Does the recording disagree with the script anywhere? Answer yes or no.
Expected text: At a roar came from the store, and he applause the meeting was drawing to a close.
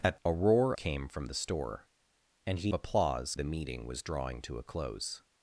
no